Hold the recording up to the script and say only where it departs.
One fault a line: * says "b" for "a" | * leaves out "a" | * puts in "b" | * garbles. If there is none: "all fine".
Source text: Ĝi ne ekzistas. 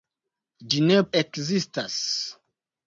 all fine